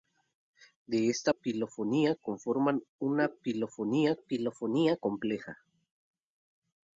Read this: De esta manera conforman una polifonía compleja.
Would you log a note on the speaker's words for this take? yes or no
yes